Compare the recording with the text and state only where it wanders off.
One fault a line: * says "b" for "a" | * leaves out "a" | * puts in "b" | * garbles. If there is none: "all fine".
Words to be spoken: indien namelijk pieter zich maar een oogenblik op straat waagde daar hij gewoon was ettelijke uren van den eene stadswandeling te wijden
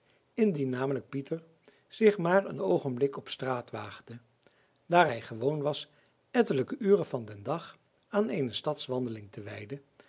* puts in "dag aan"